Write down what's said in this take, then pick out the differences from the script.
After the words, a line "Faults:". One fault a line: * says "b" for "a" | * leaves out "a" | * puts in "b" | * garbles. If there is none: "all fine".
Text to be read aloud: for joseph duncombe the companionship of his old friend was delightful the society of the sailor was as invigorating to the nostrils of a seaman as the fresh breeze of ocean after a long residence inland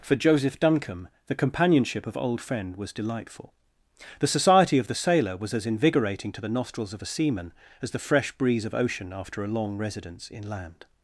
for joseph duncombe the companionship of old friend was delightful the society of the sailor was as invigorating to the nostrils of a seaman as the fresh breeze of ocean after a long residence inland
Faults:
* leaves out "his"